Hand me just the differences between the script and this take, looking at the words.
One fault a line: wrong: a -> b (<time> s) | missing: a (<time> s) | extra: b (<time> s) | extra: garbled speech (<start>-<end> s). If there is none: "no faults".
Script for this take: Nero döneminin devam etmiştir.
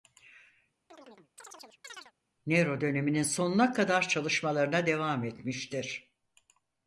extra: sonuna kadar çalışmalarına (3.2 s)